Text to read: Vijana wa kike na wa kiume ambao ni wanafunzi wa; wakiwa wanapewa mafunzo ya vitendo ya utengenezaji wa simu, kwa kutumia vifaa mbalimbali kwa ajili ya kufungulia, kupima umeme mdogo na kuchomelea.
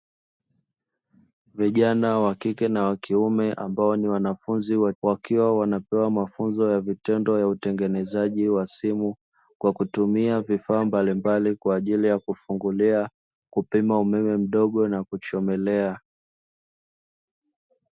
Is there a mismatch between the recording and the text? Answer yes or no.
no